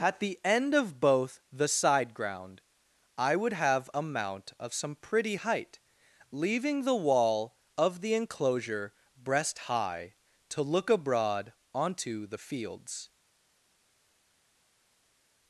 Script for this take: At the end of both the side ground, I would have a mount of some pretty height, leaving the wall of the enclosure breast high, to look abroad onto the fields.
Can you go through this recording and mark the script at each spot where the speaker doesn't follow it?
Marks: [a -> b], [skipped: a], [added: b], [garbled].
At the end of both the side ground, I would have a mount of some pretty height, leaving the wall of the enclosure breast high, to look abroad onto the fields.